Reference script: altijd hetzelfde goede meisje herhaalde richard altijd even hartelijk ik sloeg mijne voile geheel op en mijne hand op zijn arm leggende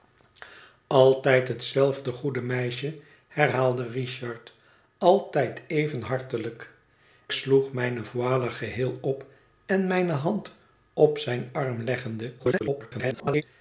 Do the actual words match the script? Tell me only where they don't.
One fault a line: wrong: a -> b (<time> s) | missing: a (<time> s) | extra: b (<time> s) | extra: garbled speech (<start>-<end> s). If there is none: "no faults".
missing: ik (6.7 s)
extra: garbled speech (12.4-13.4 s)